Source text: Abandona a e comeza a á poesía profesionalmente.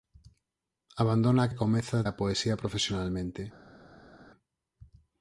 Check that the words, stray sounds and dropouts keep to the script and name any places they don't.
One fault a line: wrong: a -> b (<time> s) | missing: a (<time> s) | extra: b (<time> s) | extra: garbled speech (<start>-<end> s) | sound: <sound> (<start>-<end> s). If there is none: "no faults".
no faults